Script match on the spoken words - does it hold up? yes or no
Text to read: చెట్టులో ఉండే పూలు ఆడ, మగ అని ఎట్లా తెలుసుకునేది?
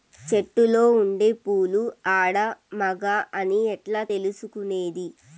yes